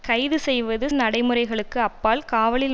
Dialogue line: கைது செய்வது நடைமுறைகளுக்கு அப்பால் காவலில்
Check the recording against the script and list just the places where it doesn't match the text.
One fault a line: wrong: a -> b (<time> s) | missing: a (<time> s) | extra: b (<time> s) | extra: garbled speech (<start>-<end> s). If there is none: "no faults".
no faults